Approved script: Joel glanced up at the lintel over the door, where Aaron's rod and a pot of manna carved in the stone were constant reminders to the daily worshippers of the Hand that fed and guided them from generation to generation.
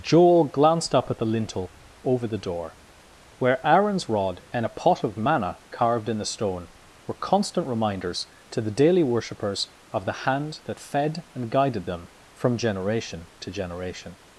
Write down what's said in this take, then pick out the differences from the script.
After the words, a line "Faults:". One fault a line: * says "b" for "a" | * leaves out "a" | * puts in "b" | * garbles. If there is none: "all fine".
Joel glanced up at the lintel over the door, where Aaron's rod and a pot of manna carved in the stone were constant reminders to the daily worshippers of the Hand that fed and guided them from generation to generation.
Faults:
all fine